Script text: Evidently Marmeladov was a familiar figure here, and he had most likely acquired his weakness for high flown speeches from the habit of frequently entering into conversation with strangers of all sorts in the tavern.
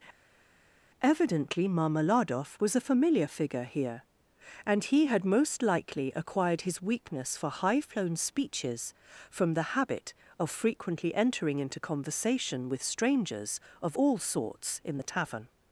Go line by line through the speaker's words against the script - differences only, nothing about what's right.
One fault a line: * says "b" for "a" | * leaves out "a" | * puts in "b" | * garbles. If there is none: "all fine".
all fine